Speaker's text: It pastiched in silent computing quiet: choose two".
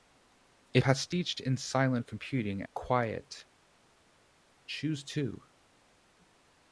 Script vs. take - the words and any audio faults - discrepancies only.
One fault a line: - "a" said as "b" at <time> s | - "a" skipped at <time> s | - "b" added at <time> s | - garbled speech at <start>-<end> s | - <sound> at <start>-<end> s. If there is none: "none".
none